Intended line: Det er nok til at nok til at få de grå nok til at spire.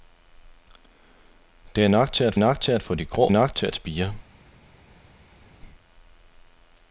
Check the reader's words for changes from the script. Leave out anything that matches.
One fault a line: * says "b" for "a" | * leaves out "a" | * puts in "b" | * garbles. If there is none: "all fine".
all fine